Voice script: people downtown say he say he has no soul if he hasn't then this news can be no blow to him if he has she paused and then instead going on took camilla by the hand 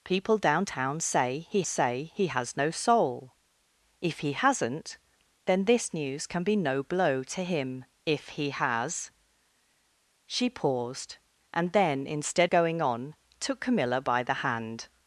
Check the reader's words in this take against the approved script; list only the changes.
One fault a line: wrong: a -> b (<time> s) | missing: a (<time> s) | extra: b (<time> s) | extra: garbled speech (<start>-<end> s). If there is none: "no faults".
no faults